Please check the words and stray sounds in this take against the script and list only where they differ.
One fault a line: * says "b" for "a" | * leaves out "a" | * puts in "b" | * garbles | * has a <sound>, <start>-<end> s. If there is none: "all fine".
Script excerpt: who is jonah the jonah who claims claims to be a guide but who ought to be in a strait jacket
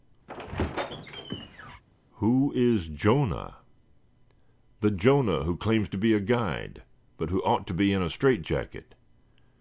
* has a squeak, 0.3-1.8 s
* leaves out "claims"